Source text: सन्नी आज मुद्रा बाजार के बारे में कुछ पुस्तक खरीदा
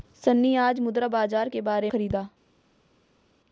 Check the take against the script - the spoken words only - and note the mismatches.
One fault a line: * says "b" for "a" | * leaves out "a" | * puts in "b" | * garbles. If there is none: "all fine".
* leaves out "में कुछ पुस्तक"